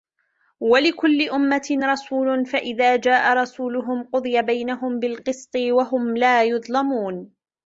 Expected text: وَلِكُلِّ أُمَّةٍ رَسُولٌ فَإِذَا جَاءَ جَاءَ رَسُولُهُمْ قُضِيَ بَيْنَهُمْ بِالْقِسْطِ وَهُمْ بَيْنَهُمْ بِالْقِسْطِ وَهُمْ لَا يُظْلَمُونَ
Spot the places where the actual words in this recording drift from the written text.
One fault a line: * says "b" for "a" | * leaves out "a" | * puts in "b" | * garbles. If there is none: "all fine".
* leaves out "جَاءَ"
* leaves out "بَيْنَهُمْ بِالْقِسْطِ وَهُمْ"